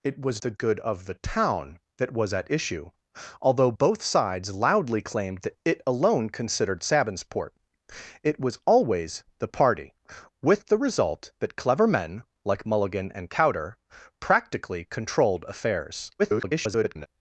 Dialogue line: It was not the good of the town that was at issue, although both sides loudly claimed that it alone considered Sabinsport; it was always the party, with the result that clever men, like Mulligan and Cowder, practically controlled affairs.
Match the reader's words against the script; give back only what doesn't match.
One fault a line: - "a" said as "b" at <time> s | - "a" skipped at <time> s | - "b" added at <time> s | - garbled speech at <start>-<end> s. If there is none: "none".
- "not" skipped at 0.4 s
- garbled speech at 16.2-17.1 s